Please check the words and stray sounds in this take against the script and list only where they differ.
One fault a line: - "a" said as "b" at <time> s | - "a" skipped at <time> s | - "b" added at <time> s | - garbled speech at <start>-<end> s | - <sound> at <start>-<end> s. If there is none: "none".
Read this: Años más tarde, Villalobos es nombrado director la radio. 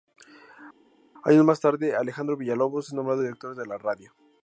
- "Alejandro" added at 2.0 s
- "de" added at 3.5 s